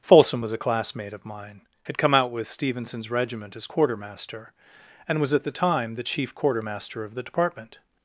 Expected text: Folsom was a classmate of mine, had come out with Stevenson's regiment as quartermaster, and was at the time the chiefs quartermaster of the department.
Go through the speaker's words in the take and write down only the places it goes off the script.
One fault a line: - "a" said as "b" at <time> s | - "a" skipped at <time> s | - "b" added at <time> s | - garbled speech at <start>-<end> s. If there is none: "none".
- "chiefs" said as "chief" at 6.0 s